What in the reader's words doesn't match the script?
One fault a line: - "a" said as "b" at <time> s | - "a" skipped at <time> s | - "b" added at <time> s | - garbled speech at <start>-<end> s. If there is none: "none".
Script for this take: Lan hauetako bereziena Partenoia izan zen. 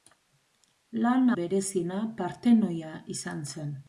- "hauetako" skipped at 1.3 s